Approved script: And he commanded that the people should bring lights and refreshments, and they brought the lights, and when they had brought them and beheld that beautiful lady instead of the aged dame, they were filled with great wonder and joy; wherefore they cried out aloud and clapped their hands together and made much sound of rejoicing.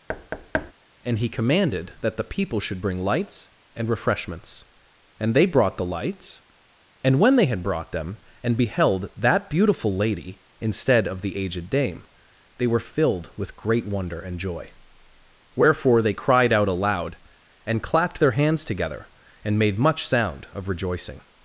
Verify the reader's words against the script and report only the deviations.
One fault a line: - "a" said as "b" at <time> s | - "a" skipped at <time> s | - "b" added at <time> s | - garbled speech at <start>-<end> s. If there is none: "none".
none